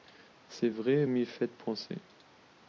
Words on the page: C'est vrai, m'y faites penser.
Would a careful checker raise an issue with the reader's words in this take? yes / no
no